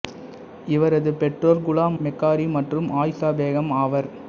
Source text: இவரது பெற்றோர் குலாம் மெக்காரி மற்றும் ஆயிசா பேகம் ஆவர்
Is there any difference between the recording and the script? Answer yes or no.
no